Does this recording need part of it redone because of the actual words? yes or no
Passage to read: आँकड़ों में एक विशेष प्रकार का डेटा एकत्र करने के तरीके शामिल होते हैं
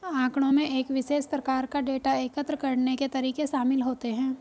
no